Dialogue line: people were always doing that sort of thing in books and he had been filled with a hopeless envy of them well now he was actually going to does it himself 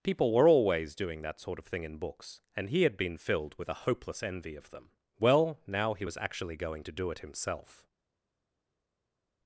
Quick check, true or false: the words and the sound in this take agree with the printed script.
false